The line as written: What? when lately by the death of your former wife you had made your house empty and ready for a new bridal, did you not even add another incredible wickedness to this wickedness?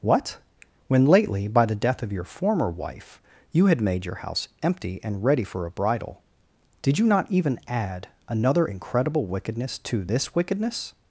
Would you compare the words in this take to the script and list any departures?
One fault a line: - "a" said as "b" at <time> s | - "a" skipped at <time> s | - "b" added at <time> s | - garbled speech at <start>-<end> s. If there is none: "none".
- "new" skipped at 5.7 s